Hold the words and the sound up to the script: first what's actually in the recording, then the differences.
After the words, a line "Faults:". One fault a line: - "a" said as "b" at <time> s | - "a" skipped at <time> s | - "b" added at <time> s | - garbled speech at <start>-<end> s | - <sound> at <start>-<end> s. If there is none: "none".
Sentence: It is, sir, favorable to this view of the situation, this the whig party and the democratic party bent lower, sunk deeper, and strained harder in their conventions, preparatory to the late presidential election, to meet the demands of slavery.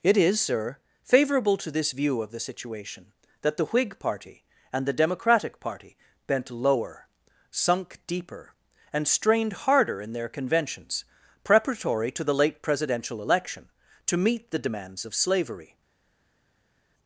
It is, sir, favorable to this view of the situation, that the whig party and the democratic party bent lower, sunk deeper, and strained harder in their conventions, preparatory to the late presidential election, to meet the demands of slavery.
Faults:
- "this" said as "that" at 3.4 s